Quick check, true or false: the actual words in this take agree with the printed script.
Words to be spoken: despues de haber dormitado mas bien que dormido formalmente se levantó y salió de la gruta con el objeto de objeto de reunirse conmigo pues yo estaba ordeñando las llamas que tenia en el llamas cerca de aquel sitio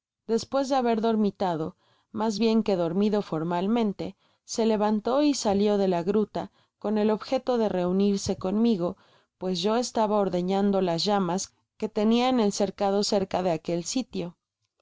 false